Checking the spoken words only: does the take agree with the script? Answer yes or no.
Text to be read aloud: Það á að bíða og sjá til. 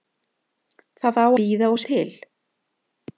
no